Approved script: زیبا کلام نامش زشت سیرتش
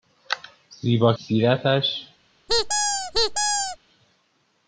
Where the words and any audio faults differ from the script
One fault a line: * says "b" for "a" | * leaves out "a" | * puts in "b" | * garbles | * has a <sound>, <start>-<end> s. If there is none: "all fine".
* leaves out "کلام نامش زشت"
* has a squeak, 2.5-3.8 s